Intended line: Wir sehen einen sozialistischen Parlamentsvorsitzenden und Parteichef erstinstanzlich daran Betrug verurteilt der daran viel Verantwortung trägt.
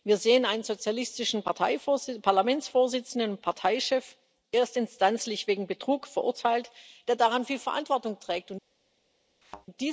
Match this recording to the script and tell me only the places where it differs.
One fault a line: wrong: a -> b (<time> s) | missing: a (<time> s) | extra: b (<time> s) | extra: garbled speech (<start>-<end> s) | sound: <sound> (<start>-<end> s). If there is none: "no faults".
wrong: daran -> wegen (5.5 s)
sound: thud (9.4-9.7 s)